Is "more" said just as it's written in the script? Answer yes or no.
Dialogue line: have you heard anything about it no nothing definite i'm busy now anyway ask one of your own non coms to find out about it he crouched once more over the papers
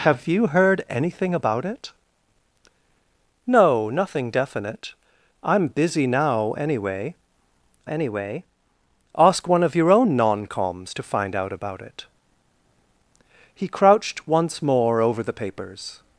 yes